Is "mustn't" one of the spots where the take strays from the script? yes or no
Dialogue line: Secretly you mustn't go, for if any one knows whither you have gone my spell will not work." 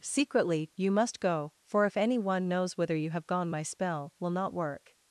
yes